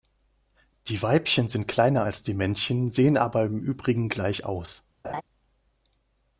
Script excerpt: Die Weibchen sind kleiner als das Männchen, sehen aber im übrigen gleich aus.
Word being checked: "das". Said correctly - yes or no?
no